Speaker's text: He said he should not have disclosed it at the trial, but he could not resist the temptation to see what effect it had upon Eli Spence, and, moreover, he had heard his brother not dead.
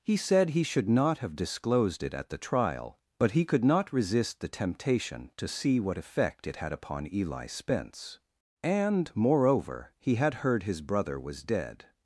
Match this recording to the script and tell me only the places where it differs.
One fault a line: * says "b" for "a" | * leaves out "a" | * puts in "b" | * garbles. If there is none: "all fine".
* says "was" for "not"